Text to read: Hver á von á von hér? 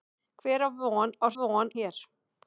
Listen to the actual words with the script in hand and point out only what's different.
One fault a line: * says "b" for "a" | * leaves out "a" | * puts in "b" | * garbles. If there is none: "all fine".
all fine